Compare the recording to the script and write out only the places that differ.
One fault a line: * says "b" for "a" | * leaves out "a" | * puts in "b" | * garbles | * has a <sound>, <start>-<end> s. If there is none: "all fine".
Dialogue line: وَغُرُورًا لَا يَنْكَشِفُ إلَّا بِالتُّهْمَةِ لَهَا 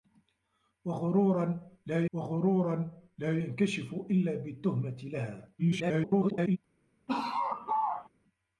* puts in "وَغُرُورًا لَا"
* garbles
* has a laugh, 7.1-8.1 s